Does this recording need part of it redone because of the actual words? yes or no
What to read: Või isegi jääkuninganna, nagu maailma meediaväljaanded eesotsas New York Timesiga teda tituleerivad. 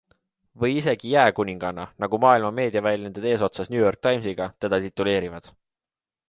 no